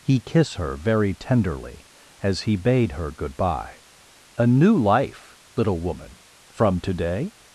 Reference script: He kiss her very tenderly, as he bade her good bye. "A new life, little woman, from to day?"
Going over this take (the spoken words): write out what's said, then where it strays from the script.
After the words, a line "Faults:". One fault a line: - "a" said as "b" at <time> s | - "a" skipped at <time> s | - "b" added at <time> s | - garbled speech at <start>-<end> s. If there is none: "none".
He kiss her very tenderly, as he bade her good bye. "A new life, little woman, from to day?"
Faults:
none